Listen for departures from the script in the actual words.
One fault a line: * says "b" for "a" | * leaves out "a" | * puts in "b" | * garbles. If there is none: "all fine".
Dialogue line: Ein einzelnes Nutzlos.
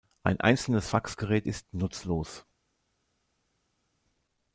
* puts in "Faxgerät ist"